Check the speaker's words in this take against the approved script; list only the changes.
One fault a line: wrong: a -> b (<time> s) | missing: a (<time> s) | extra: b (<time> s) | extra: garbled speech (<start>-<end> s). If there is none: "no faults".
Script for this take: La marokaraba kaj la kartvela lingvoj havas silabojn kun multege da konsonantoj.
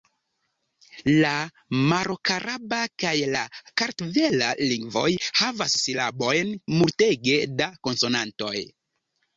missing: kun (6.5 s)